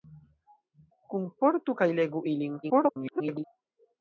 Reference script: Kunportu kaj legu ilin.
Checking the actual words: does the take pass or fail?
fail